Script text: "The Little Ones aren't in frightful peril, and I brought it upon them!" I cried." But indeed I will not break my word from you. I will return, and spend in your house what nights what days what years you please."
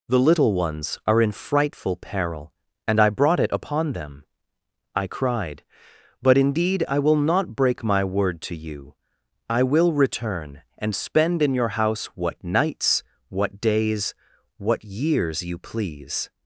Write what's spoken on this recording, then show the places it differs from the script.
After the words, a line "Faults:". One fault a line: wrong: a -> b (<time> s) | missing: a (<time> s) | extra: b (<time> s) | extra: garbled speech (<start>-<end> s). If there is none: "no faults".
"The Little Ones are in frightful peril, and I brought it upon them!" I cried." But indeed I will not break my word to you. I will return, and spend in your house what nights what days what years you please."
Faults:
wrong: aren't -> are (1.1 s)
wrong: from -> to (8.4 s)